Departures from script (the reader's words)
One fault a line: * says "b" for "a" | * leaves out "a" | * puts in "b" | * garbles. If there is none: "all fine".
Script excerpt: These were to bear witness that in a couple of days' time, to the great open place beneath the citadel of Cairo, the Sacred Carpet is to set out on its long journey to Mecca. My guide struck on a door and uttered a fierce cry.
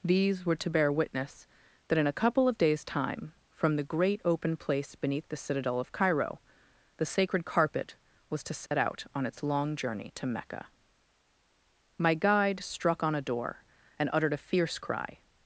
* says "from" for "to"
* says "was" for "is"